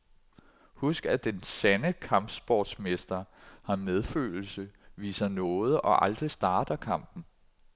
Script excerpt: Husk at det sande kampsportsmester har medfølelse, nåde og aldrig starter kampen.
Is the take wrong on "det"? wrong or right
wrong